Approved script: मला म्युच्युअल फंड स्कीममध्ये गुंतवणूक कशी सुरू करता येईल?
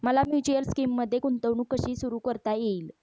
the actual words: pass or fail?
fail